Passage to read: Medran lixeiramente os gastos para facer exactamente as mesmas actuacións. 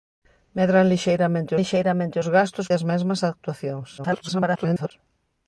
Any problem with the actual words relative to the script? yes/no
yes